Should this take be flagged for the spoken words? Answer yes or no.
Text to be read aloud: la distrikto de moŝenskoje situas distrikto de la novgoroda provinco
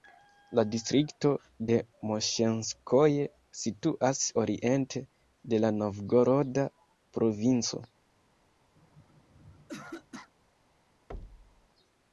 yes